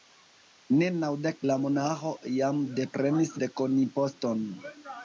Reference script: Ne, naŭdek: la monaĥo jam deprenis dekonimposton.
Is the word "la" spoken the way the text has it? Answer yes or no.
yes